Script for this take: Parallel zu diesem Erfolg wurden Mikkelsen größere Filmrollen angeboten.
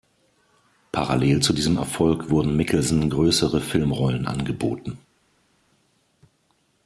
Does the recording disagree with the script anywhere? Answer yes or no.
no